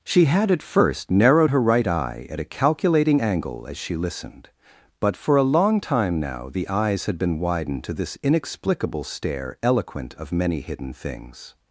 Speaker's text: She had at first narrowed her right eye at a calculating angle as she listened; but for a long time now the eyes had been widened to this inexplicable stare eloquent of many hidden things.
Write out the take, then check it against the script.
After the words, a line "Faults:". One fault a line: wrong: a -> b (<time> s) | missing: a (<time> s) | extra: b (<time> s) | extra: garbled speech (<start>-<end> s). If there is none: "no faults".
She had at first narrowed her right eye at a calculating angle as she listened; but for a long time now the eyes had been widened to this inexplicable stare eloquent of many hidden things.
Faults:
no faults